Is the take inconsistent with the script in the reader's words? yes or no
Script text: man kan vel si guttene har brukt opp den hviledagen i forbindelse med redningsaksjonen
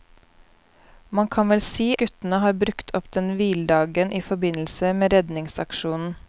no